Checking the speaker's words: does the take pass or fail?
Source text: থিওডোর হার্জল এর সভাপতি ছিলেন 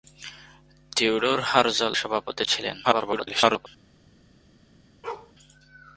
fail